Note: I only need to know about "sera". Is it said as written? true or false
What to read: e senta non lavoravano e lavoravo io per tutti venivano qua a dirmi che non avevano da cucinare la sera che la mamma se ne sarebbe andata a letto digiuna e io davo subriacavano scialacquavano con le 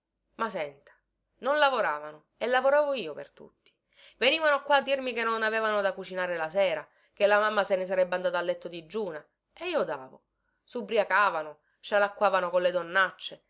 true